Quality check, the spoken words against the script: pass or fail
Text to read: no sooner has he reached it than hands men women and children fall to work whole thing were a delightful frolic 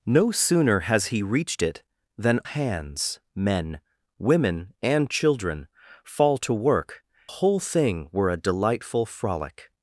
pass